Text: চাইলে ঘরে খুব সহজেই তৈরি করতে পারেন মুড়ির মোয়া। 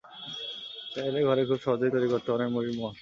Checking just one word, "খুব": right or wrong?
right